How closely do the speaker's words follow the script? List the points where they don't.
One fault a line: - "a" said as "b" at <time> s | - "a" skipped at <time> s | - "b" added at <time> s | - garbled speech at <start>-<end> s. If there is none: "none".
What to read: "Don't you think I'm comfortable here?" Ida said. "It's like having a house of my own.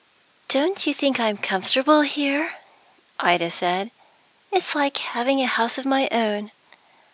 none